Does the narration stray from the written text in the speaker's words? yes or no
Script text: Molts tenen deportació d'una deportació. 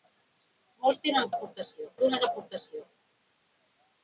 no